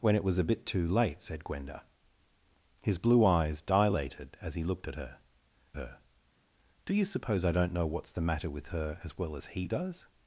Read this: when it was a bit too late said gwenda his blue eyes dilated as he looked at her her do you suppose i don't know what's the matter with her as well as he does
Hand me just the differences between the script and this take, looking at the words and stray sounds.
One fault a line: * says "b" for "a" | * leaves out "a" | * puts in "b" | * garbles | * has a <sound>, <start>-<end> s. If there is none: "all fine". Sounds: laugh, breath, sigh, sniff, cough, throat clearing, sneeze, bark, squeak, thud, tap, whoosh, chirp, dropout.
all fine